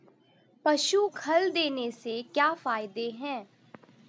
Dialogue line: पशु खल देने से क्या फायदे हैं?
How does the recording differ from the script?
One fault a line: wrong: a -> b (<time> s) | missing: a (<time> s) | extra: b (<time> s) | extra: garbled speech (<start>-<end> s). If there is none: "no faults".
no faults